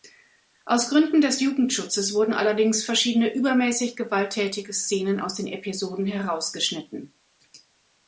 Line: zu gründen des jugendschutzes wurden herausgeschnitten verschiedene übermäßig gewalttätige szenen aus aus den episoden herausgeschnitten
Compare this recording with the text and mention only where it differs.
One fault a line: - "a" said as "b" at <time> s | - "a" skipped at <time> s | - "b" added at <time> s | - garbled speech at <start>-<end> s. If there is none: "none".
- "zu" said as "aus" at 0.7 s
- "herausgeschnitten" said as "allerdings" at 2.3 s
- "aus" skipped at 5.3 s